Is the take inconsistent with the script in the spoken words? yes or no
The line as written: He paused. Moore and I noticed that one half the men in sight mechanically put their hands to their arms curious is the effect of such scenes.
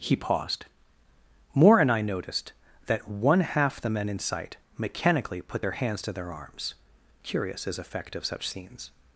yes